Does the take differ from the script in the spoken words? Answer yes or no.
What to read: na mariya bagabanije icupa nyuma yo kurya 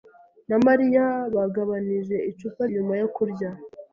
no